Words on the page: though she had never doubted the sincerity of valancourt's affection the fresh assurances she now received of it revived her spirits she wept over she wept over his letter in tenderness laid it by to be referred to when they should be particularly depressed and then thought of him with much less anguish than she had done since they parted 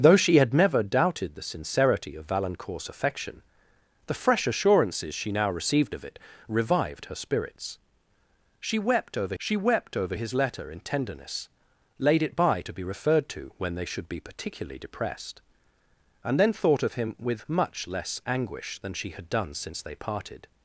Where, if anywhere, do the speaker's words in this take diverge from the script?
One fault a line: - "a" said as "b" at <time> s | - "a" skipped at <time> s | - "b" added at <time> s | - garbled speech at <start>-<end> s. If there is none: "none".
none